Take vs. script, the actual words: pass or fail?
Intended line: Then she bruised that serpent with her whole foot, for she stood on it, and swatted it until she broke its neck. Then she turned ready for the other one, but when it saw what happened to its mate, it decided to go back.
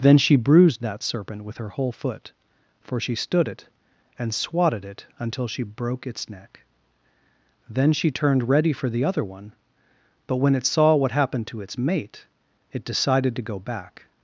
fail